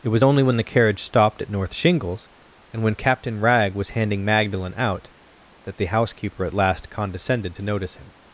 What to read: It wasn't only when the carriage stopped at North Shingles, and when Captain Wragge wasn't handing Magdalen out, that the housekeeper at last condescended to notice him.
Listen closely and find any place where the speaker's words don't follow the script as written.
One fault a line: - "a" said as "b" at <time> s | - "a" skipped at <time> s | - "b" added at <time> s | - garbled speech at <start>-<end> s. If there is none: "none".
- "wasn't" said as "was" at 0.1 s
- "wasn't" said as "was" at 3.7 s